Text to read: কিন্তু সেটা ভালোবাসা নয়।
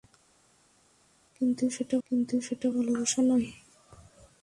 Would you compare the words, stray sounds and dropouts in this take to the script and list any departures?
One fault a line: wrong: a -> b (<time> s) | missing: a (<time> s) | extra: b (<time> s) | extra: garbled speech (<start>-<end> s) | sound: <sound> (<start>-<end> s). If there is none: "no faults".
extra: কিন্তু সেটা (2.1 s)